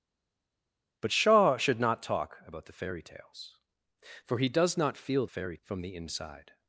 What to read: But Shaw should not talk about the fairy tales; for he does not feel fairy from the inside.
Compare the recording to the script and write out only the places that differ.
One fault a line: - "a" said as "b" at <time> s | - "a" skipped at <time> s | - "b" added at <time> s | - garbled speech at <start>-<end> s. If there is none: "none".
none